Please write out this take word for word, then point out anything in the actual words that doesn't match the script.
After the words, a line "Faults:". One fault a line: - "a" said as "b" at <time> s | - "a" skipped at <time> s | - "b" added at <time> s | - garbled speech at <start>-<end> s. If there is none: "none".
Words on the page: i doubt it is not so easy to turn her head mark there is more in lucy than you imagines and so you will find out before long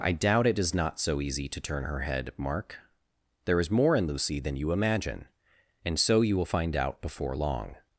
i doubt it is not so easy to turn her head mark there is more in lucy than you imagine and so you will find out before long
Faults:
- "imagines" said as "imagine" at 4.7 s